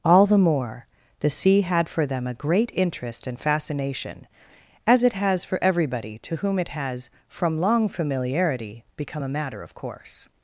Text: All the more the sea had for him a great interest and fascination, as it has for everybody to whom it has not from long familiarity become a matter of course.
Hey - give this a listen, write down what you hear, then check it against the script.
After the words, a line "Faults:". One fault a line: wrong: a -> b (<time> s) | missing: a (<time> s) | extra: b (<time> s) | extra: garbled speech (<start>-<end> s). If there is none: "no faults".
All the more the sea had for them a great interest and fascination, as it has for everybody to whom it has from long familiarity become a matter of course.
Faults:
wrong: him -> them (2.1 s)
missing: not (7.1 s)